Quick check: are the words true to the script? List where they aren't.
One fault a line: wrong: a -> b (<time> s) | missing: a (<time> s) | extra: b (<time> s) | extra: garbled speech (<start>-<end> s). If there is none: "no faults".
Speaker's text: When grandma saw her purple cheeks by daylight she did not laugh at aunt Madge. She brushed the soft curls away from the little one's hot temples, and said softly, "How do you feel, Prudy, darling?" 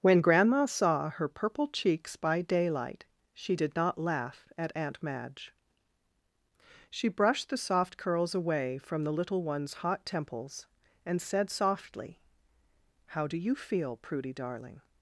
no faults